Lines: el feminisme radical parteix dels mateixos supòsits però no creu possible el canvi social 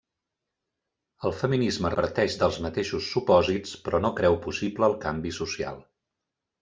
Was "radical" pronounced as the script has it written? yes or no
no